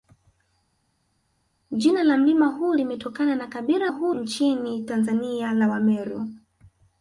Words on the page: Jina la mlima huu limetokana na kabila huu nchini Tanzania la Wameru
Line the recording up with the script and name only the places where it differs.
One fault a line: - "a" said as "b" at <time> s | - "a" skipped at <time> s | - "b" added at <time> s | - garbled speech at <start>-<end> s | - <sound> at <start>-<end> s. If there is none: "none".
none